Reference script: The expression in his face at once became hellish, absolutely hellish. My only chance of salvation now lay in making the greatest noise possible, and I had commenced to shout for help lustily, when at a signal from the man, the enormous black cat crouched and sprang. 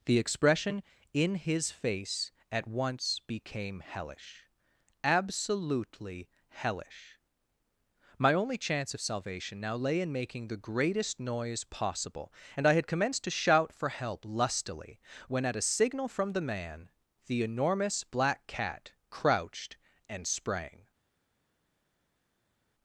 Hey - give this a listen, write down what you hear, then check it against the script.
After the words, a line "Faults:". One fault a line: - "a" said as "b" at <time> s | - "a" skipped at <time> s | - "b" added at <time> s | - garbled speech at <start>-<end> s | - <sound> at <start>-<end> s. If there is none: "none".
The expression in his face at once became hellish, absolutely hellish. My only chance of salvation now lay in making the greatest noise possible, and I had commenced to shout for help lustily, when at a signal from the man, the enormous black cat crouched and sprang.
Faults:
none